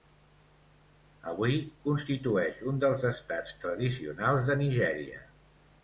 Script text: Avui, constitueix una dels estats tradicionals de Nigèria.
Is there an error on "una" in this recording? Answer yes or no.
yes